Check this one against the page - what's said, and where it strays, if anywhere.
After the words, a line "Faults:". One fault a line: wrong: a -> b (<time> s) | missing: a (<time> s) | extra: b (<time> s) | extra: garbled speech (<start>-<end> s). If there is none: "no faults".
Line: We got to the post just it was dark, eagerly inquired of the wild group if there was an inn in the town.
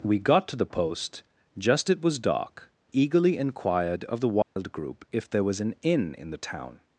We got to the post just it was dark, eagerly inquired of the wild group if there was an inn in the town.
Faults:
no faults